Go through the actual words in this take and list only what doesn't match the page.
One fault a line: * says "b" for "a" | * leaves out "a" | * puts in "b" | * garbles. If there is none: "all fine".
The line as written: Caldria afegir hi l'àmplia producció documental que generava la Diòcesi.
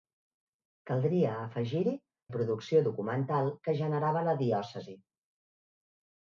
* leaves out "l'àmplia"